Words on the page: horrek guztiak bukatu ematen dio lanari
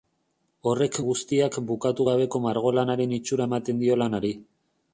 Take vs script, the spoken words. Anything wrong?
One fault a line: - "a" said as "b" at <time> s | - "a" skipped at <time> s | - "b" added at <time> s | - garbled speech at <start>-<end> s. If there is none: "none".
- "gabeko margolanaren itxura" added at 2.1 s